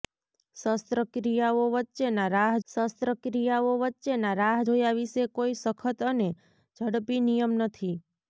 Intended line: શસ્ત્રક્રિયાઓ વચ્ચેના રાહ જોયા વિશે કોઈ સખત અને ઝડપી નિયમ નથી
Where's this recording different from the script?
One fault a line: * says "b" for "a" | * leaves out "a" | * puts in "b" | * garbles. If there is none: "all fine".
* puts in "શસ્ત્રક્રિયાઓ વચ્ચેના રાહ"